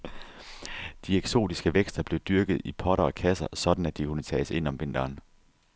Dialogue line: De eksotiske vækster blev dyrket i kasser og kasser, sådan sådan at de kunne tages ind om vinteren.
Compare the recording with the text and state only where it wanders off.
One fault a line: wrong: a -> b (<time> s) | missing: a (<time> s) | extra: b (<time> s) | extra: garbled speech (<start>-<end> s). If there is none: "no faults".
wrong: kasser -> potter (2.7 s)
missing: sådan (3.8 s)